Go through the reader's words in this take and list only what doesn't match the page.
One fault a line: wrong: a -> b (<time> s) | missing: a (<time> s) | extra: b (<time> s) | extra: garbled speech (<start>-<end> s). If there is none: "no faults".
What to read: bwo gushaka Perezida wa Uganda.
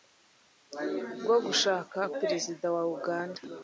no faults